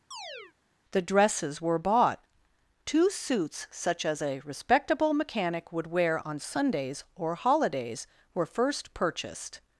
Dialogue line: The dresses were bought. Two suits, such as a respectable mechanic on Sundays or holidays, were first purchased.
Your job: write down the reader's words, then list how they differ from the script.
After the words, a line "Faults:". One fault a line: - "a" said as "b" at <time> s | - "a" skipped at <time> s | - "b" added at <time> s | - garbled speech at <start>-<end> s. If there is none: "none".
The dresses were bought. Two suits, such as a respectable mechanic would wear on Sundays or holidays, were first purchased.
Faults:
- "would wear" added at 5.7 s